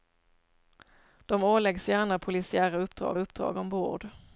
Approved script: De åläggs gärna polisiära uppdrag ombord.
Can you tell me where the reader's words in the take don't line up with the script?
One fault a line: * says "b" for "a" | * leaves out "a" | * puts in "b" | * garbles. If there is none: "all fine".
* puts in "uppdrag"